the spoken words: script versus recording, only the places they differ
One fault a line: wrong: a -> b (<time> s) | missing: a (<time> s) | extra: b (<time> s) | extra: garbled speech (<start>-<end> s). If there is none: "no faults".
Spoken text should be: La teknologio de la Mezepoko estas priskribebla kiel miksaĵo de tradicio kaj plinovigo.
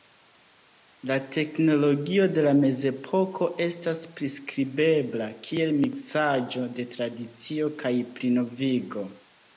no faults